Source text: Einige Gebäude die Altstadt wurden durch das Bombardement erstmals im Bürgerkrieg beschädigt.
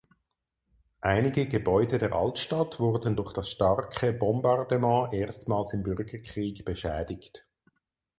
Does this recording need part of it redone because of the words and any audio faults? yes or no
yes